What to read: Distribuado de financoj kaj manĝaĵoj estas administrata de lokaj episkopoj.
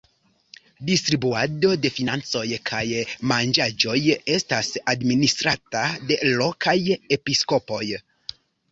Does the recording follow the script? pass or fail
pass